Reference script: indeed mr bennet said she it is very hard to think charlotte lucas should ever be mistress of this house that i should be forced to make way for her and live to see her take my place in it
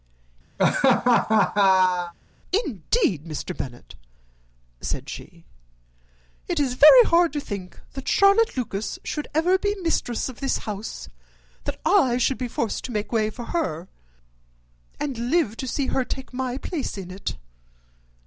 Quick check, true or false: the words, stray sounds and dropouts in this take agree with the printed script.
false